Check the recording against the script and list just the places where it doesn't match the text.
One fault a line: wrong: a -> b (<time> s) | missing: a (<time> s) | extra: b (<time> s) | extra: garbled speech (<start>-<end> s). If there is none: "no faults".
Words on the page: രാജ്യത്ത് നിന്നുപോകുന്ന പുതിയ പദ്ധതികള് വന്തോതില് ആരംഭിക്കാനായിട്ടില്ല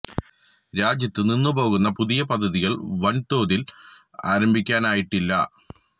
no faults